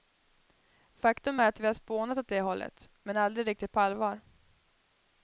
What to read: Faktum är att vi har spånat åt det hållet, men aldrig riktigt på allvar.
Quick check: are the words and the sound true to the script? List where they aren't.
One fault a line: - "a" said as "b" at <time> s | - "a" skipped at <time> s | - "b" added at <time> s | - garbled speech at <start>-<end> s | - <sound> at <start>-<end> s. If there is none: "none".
none